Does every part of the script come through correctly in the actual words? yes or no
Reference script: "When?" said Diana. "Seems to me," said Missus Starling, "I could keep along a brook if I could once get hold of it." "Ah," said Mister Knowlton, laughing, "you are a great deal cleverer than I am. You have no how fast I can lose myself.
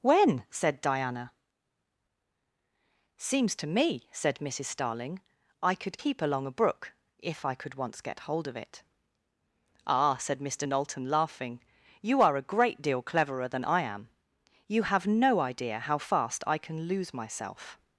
no